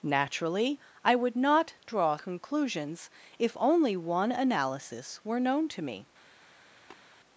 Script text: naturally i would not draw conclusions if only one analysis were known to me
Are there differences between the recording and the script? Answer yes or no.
no